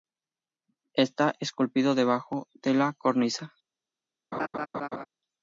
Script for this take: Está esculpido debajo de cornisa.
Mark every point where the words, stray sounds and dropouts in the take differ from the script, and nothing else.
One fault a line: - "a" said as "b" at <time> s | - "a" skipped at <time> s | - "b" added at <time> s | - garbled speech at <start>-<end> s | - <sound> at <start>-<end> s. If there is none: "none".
- "la" added at 2.7 s
- laugh at 4.3-5.1 s